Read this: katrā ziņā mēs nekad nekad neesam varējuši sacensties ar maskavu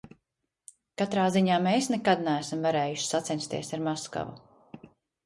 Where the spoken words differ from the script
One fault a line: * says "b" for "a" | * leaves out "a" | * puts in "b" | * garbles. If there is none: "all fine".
* leaves out "nekad"